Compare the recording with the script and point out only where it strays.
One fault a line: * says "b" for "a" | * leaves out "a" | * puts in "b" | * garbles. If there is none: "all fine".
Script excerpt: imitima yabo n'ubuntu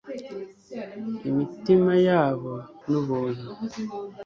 all fine